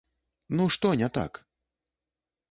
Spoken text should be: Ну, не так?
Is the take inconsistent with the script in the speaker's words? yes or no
yes